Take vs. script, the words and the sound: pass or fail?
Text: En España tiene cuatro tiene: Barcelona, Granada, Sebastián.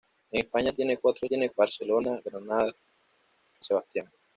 pass